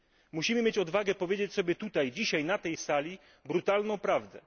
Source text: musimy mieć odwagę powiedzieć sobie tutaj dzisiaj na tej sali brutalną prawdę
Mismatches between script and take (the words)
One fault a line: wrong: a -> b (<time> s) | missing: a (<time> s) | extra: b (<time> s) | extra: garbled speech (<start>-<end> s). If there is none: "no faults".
no faults